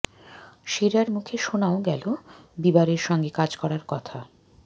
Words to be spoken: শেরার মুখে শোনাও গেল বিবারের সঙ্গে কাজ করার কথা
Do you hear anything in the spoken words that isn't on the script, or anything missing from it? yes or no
no